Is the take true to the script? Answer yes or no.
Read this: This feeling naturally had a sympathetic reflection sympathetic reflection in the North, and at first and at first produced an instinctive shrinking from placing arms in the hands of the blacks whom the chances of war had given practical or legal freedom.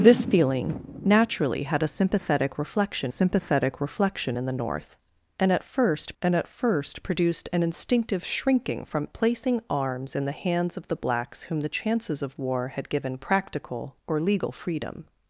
yes